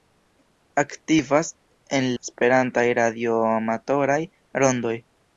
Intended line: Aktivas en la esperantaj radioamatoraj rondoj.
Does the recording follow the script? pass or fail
fail